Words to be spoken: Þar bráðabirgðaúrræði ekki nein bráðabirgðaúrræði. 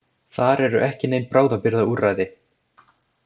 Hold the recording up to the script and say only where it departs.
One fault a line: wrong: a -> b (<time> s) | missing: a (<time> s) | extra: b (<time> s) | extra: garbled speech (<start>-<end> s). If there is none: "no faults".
wrong: bráðabirgðaúrræði -> eru (0.7 s)